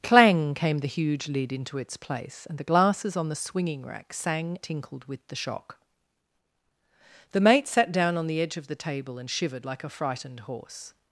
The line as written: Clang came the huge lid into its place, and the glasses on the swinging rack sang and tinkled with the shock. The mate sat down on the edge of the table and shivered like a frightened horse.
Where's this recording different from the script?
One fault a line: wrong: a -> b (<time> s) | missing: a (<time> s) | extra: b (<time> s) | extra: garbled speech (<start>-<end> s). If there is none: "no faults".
missing: and (4.6 s)